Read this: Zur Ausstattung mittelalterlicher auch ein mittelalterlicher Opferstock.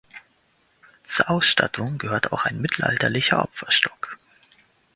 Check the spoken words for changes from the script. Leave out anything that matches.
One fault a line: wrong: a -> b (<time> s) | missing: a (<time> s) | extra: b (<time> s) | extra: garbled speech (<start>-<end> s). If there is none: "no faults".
wrong: mittelalterlicher -> gehört (2.0 s)